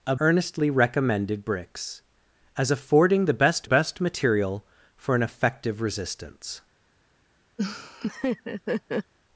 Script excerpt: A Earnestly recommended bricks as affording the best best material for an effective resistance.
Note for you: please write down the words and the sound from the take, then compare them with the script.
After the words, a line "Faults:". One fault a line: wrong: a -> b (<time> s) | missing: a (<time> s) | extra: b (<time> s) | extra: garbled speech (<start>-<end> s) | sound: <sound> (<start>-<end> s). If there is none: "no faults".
A Earnestly recommended bricks as affording the best best material for an effective resistance.
Faults:
sound: laugh (7.6-9.1 s)